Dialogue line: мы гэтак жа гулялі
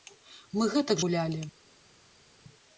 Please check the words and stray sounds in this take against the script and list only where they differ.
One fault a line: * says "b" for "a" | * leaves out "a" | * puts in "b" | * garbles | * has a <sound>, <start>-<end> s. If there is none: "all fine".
* leaves out "жа"